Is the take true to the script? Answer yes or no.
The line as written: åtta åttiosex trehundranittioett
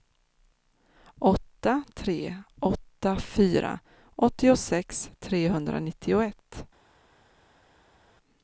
no